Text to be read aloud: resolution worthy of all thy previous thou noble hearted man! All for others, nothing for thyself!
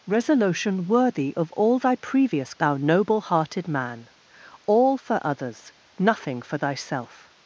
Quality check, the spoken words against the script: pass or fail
pass